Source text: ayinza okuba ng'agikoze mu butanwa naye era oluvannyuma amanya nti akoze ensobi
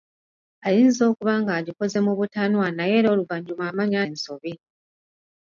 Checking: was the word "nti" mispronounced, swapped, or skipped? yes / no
yes